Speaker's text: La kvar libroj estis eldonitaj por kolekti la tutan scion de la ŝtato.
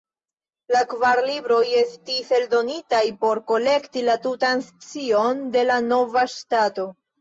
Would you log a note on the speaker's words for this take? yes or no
yes